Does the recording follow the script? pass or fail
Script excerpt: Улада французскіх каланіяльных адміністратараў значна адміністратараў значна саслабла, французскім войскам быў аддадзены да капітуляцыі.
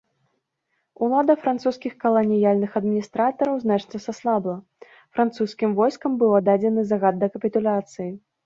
fail